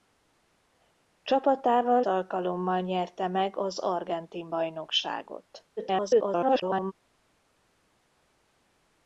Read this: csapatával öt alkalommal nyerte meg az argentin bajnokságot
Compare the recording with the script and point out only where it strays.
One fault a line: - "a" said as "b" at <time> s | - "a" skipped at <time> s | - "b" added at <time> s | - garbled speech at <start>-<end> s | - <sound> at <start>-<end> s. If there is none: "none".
- "öt" skipped at 2.0 s
- garbled speech at 5.8-6.9 s